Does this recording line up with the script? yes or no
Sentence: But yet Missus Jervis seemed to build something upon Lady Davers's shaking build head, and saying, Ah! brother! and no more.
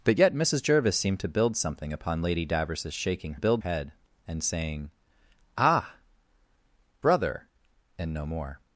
yes